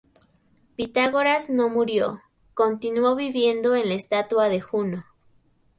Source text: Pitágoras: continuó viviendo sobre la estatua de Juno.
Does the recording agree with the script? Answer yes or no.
no